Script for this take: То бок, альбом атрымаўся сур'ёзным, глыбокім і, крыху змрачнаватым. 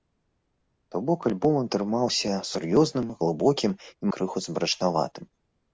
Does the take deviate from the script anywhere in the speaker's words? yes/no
no